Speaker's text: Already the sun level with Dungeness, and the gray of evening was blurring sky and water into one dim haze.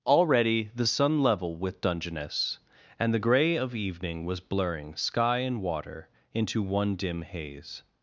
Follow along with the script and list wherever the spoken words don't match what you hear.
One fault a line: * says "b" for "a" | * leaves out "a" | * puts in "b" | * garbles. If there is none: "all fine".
all fine